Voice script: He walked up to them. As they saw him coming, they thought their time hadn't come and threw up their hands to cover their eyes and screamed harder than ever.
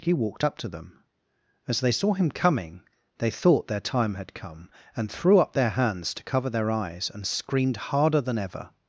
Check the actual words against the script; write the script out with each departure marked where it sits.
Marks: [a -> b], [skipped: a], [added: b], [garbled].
He walked up to them. As they saw him coming, they thought their time [hadn't -> had] come and threw up their hands to cover their eyes and screamed harder than ever.